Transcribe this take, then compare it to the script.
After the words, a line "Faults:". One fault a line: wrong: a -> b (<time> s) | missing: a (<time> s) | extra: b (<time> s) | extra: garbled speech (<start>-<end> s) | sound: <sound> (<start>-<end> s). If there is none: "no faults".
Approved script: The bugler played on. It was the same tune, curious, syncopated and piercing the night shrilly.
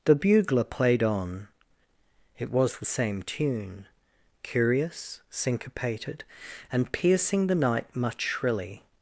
The bugler played on. It was the same tune, curious, syncopated and piercing the night much shrilly.
Faults:
extra: much (7.9 s)